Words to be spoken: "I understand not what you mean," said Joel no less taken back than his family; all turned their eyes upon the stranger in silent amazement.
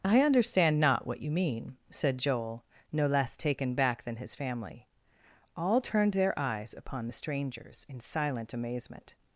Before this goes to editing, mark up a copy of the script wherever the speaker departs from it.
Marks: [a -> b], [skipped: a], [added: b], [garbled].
"I understand not what you mean," said Joel no less taken back than his family; all turned their eyes upon the [stranger -> strangers] in silent amazement.